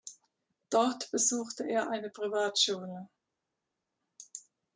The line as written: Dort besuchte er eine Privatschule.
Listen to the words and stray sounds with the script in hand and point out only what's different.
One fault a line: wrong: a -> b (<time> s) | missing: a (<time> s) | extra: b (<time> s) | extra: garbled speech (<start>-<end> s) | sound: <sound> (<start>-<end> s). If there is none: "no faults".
no faults